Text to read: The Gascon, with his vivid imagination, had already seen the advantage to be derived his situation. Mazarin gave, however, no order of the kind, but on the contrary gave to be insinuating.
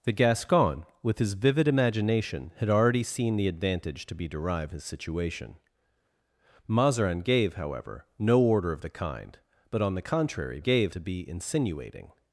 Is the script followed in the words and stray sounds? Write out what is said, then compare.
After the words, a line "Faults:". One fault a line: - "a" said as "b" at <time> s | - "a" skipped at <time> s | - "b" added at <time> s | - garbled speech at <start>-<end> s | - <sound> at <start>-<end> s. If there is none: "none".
The Gascon, with his vivid imagination, had already seen the advantage to be derived his situation. Mazarin gave, however, no order of the kind, but on the contrary gave to be insinuating.
Faults:
none